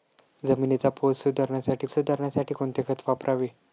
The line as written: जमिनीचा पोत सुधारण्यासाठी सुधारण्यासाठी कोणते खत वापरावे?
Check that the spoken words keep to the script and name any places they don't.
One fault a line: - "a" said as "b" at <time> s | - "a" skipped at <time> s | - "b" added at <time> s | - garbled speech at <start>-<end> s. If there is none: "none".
none